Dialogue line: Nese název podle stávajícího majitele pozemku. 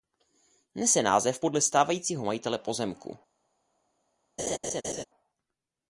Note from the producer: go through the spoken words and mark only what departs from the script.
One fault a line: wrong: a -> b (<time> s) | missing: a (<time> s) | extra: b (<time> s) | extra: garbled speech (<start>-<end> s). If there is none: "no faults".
no faults